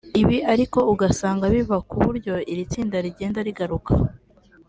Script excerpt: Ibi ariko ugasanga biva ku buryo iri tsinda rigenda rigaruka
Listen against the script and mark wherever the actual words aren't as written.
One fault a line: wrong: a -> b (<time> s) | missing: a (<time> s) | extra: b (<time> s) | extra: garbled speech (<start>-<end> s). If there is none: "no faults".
no faults